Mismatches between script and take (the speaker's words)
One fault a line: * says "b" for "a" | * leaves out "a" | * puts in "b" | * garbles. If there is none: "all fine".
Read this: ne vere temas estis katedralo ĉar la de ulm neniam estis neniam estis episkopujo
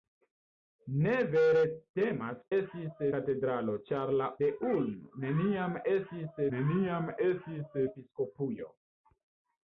all fine